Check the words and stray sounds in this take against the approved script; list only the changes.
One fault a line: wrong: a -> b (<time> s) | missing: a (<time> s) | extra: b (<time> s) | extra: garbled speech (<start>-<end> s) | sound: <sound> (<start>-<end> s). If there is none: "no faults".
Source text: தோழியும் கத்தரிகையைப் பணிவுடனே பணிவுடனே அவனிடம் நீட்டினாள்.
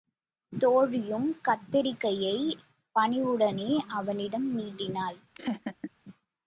missing: பணிவுடனே (3.7 s)
sound: laugh (5.3-5.9 s)